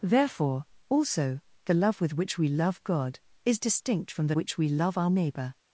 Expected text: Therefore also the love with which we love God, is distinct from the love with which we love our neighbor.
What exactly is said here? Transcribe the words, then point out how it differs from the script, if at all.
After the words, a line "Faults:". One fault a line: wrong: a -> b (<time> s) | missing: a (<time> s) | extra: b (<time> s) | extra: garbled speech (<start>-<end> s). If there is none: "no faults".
Therefore also the love with which we love God, is distinct from the which we love our neighbor.
Faults:
missing: love with (4.4 s)